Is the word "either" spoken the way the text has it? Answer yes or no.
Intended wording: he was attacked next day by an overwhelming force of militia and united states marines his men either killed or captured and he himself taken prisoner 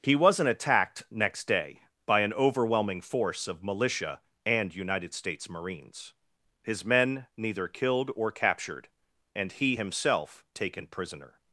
no